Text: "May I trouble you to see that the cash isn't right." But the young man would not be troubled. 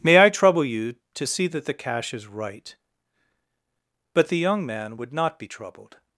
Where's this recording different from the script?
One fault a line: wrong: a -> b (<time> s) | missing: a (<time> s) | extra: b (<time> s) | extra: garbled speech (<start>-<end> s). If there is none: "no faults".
wrong: isn't -> is (2.1 s)